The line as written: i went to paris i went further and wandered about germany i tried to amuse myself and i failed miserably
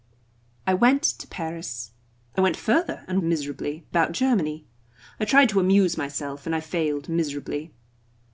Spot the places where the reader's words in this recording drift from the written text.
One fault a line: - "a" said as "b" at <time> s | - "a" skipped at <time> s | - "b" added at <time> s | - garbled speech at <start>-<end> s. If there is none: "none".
- "wandered" said as "miserably" at 3.2 s